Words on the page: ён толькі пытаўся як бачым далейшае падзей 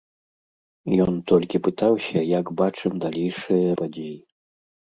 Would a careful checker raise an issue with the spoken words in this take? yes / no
no